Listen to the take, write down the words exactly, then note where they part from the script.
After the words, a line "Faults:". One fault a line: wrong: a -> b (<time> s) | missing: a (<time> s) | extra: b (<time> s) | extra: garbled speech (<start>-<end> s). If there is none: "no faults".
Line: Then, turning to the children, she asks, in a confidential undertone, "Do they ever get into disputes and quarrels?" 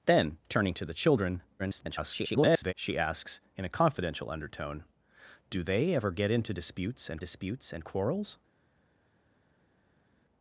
Then, turning to the children, [garbled] she asks, in a confidential undertone, "Do they ever get into disputes and disputes and quarrels?"
Faults:
extra: garbled speech (1.6-2.7 s)
extra: disputes and (7.2 s)